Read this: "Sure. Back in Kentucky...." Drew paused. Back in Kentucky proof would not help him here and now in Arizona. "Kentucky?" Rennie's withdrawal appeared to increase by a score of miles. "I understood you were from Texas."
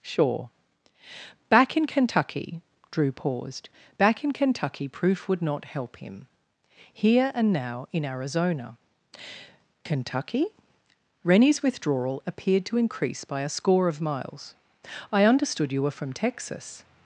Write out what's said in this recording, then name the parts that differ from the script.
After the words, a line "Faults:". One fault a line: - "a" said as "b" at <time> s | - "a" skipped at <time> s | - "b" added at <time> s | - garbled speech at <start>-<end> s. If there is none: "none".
"Sure. Back in Kentucky...." Drew paused. Back in Kentucky proof would not help him here and now in Arizona. "Kentucky?" Rennie's withdrawal appeared to increase by a score of miles. "I understood you were from Texas."
Faults:
none